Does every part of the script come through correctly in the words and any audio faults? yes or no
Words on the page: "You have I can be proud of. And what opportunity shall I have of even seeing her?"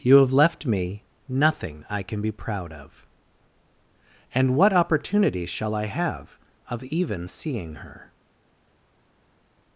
no